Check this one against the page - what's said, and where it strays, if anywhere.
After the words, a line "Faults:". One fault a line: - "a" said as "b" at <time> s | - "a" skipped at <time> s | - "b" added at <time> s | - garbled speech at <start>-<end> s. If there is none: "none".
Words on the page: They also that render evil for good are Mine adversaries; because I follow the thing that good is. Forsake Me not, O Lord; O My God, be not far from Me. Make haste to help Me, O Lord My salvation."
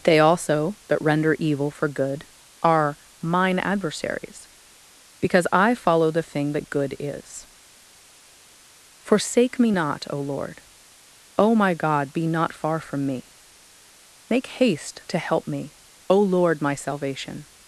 They also that render evil for good are Mine adversaries; because I follow the thing that good is. Forsake Me not, O Lord; O My God, be not far from Me. Make haste to help Me, O Lord My salvation."
Faults:
none